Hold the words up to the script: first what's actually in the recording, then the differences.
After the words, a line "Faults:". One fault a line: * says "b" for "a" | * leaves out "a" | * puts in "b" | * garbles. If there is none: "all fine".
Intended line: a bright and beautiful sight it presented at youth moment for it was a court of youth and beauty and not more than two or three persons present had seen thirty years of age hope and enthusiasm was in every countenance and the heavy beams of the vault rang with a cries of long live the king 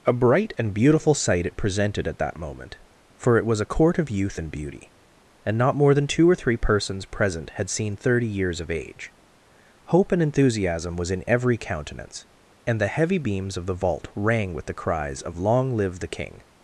a bright and beautiful sight it presented at that moment for it was a court of youth and beauty and not more than two or three persons present had seen thirty years of age hope and enthusiasm was in every countenance and the heavy beams of the vault rang with the cries of long live the king
Faults:
* says "that" for "youth"
* says "the" for "a"